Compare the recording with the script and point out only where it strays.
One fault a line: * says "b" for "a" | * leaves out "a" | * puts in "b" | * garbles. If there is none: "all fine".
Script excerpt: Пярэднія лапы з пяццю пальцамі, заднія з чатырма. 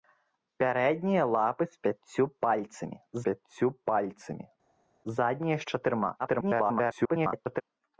* puts in "пяццю пальцамі"
* garbles